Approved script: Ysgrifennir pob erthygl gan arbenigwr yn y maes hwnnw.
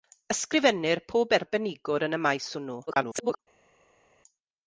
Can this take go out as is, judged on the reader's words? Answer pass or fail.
fail